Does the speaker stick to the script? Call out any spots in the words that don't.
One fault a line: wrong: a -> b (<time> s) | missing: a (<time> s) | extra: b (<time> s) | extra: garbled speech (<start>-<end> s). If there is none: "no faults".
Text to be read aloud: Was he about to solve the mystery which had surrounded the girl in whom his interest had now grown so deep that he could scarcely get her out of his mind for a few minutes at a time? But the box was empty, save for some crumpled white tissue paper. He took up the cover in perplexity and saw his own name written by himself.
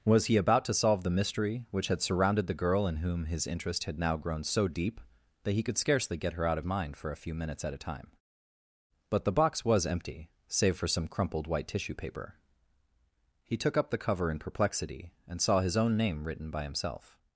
missing: his (6.7 s)